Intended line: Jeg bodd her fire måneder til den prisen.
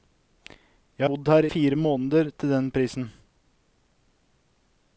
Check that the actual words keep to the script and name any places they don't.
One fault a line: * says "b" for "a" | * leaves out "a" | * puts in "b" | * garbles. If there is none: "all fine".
all fine